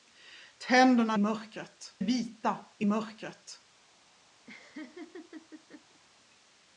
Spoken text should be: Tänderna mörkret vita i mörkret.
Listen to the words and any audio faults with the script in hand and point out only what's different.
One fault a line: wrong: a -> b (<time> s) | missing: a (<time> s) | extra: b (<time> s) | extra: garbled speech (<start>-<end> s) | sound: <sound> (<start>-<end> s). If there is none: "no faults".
sound: laugh (4.5-6.0 s)